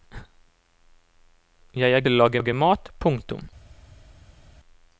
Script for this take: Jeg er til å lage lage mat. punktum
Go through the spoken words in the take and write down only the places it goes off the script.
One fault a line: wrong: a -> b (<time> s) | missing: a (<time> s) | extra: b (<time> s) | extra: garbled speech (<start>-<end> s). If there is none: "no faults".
no faults